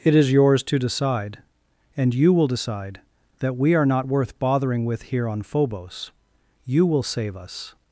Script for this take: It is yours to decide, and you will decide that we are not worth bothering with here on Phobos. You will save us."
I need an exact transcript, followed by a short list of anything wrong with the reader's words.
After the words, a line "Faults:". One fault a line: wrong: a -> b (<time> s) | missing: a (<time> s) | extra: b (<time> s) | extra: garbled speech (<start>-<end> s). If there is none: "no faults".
It is yours to decide, and you will decide that we are not worth bothering with here on Phobos. You will save us."
Faults:
no faults